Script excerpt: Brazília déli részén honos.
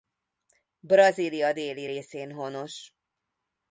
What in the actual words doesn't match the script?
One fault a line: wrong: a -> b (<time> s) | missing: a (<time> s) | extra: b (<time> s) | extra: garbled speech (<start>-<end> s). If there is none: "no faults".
no faults